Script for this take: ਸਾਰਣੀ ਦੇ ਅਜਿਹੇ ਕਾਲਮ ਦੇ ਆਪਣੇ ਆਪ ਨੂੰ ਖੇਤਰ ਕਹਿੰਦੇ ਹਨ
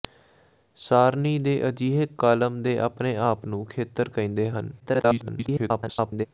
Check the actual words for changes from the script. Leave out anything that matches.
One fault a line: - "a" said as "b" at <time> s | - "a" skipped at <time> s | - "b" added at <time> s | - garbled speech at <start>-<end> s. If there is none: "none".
- garbled speech at 4.8-6.3 s